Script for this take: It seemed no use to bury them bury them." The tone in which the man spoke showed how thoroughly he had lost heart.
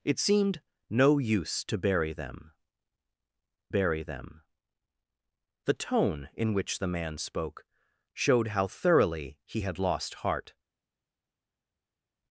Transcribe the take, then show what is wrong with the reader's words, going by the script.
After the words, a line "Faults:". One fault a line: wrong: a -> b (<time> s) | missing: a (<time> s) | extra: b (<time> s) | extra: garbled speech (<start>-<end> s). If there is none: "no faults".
It seemed no use to bury them bury them." The tone in which the man spoke showed how thoroughly he had lost heart.
Faults:
no faults